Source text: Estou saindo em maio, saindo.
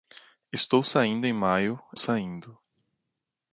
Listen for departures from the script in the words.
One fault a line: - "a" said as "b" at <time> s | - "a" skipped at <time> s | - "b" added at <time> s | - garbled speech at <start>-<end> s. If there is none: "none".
none